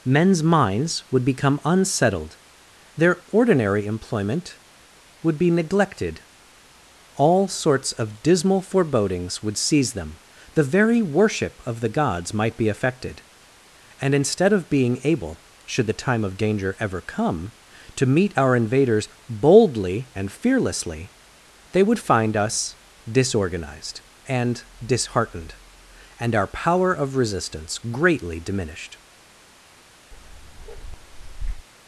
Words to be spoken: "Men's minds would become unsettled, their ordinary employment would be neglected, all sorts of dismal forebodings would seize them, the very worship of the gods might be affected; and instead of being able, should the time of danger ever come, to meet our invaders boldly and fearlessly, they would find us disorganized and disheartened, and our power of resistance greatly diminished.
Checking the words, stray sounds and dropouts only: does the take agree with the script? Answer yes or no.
no